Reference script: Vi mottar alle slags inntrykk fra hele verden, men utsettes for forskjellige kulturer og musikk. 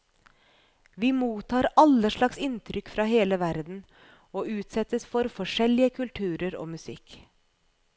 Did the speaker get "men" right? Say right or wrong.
wrong